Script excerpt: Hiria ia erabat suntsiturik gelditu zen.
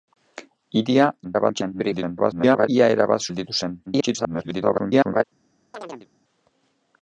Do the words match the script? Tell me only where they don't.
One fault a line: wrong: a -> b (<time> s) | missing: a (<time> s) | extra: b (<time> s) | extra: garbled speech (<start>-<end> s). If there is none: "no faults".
extra: garbled speech (1.2-2.7 s)
missing: suntsiturik (3.3 s)
extra: garbled speech (3.9-5.2 s)